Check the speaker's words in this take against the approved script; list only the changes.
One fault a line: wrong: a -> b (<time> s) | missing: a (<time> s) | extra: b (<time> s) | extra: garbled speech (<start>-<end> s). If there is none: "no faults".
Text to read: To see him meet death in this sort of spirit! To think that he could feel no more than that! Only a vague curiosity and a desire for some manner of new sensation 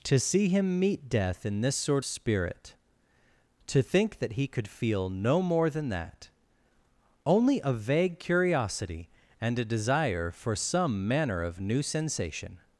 missing: of (2.0 s)